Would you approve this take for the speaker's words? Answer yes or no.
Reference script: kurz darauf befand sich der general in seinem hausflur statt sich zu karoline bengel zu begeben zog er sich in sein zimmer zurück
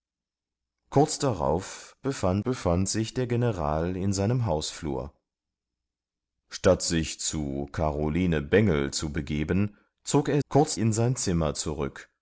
no